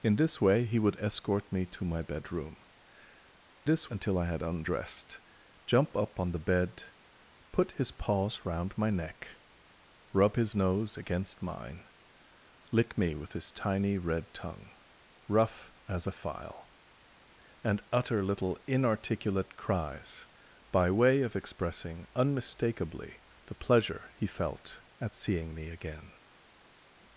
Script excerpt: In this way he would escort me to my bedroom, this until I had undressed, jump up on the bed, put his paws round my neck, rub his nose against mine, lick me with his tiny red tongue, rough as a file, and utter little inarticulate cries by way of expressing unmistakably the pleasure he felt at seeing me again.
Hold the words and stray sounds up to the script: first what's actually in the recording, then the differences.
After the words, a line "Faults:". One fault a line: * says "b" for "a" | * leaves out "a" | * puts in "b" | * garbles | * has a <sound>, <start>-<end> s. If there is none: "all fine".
In this way he would escort me to my bedroom, this until I had undressed, jump up on the bed, put his paws round my neck, rub his nose against mine, lick me with his tiny red tongue, rough as a file, and utter little inarticulate cries by way of expressing unmistakably the pleasure he felt at seeing me again.
Faults:
all fine